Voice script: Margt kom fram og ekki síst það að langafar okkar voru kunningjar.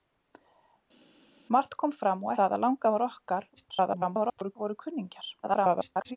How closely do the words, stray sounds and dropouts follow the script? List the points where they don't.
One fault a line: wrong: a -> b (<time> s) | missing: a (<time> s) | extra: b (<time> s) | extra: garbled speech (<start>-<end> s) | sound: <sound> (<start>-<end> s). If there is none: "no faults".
missing: ekki síst (2.3 s)
extra: garbled speech (3.6-4.6 s)
extra: garbled speech (5.4-6.2 s)